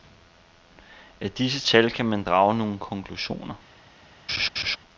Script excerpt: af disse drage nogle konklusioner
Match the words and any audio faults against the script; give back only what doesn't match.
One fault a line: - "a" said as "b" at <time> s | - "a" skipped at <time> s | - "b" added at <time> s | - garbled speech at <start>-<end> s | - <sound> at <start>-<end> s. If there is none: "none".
- "tal kan man" added at 1.6 s
- laugh at 4.3-4.8 s